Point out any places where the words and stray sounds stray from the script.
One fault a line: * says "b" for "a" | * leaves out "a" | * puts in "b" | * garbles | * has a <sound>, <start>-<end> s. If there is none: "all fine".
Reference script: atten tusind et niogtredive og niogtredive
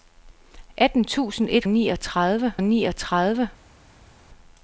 all fine